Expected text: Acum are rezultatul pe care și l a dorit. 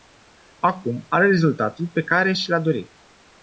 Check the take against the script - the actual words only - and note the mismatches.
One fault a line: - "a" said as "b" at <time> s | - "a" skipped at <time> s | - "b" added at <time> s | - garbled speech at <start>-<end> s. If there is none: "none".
none